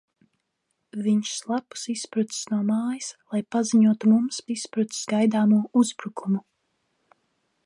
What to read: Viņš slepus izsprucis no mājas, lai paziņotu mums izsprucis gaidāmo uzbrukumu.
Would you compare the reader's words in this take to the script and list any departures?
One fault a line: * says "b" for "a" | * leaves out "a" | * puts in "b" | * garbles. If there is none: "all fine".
all fine